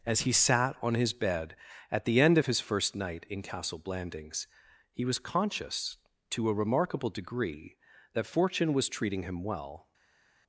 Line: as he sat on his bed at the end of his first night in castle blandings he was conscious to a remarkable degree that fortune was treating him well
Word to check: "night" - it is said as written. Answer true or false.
true